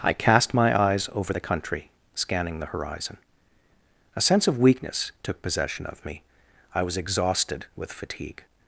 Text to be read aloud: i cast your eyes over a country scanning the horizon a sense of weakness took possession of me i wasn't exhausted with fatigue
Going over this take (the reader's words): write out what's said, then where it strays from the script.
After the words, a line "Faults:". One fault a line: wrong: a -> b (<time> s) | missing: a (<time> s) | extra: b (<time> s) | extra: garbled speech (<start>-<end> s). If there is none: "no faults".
i cast my eyes over the country scanning the horizon a sense of weakness took possession of me i was exhausted with fatigue
Faults:
wrong: your -> my (0.6 s)
wrong: a -> the (1.3 s)
wrong: wasn't -> was (6.8 s)